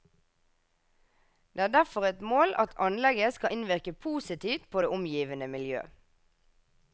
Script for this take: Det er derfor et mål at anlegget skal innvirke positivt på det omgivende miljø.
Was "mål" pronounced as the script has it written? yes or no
yes